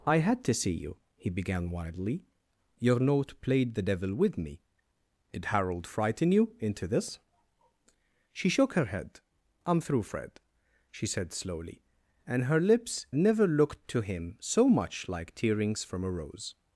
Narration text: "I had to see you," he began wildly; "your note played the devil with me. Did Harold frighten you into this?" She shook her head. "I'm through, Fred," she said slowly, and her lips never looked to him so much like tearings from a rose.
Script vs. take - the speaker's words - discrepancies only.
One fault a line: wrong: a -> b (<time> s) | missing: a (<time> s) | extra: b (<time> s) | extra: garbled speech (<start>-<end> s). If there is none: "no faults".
no faults